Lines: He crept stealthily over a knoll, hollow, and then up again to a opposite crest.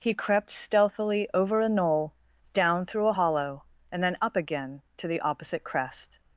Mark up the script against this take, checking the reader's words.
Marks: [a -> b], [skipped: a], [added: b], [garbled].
He crept stealthily over a knoll, [added: down through a] hollow, and then up again to [a -> the] opposite crest.